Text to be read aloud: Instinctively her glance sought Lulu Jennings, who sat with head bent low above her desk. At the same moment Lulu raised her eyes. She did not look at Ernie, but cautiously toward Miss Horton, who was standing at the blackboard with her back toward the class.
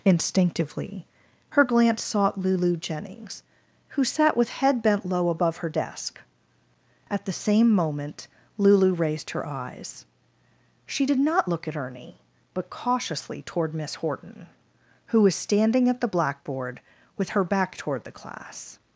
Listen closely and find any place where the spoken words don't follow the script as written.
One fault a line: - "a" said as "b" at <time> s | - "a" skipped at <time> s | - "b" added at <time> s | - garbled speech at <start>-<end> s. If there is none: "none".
none